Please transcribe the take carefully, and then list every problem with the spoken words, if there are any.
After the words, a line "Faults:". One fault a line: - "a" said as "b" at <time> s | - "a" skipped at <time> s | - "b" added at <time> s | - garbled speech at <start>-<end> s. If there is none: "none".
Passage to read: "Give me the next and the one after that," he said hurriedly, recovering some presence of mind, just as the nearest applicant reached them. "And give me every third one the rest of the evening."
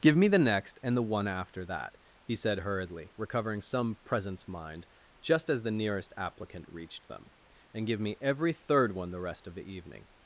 "Give me the next and the one after that," he said hurriedly, recovering some presence mind, just as the nearest applicant reached them. "And give me every third one the rest of the evening."
Faults:
- "of" skipped at 4.5 s